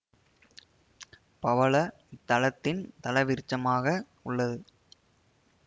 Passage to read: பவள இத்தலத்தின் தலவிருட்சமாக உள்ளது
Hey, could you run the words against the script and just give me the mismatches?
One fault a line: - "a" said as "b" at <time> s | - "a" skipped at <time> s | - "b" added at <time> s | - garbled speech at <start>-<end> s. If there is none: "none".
none